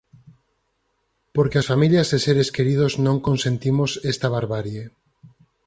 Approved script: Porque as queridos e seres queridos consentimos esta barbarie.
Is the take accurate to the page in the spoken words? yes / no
no